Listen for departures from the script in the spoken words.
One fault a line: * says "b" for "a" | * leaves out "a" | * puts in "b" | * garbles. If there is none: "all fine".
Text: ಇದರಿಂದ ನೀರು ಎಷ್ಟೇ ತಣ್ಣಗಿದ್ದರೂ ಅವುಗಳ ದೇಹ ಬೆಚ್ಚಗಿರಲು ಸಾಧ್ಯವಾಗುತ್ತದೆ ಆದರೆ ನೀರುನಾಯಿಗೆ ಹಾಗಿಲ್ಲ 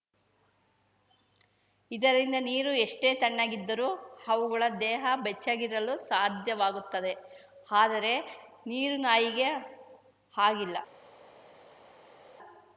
all fine